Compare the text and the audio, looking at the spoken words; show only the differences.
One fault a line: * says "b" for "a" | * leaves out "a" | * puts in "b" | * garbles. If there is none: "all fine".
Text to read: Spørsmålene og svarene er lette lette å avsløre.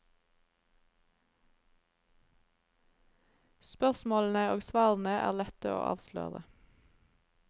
* leaves out "lette"